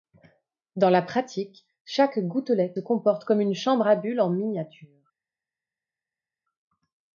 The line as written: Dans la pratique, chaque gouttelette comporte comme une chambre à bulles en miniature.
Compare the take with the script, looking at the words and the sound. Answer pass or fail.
pass